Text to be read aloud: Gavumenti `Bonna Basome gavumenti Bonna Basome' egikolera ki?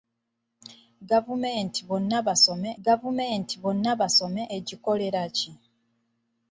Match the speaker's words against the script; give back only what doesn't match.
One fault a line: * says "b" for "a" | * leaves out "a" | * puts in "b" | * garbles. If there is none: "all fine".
all fine